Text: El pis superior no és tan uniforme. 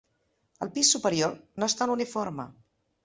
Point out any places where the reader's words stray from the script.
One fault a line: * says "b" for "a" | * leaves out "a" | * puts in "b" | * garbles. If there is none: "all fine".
all fine